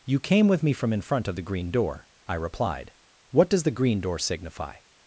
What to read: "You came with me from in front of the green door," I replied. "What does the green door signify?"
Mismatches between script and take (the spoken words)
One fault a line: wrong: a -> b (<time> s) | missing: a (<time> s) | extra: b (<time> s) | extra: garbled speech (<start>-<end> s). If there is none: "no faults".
no faults